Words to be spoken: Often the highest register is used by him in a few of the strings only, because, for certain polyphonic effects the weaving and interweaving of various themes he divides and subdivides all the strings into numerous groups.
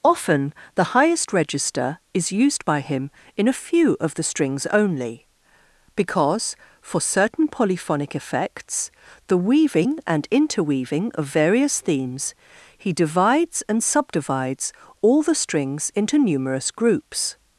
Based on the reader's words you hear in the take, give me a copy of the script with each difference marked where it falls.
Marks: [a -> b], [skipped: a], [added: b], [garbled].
Often the highest register is used by him in a few of the strings only, because, for certain polyphonic effects the weaving and interweaving of various themes he divides and subdivides all the strings into numerous groups.